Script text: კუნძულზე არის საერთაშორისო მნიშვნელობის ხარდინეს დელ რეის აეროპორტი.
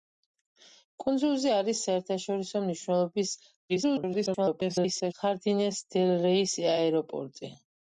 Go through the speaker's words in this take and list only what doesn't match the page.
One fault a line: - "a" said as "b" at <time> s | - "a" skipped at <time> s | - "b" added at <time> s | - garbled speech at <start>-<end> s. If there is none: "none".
- garbled speech at 3.7-5.1 s